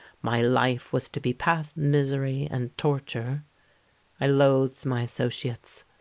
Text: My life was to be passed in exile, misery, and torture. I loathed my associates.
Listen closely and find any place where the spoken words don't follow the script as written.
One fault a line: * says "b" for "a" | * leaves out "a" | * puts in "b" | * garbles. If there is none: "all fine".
* leaves out "in exile"